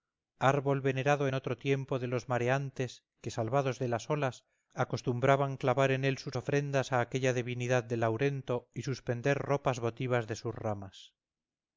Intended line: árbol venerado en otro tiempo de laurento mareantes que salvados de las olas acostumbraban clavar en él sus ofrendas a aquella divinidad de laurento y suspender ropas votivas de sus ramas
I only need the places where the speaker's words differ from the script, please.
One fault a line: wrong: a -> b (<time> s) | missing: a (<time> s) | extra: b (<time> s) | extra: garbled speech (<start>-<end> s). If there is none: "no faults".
wrong: laurento -> los (2.1 s)